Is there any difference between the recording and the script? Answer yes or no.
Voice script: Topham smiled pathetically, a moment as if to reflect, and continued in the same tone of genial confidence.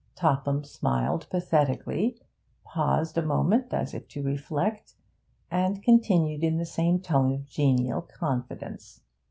yes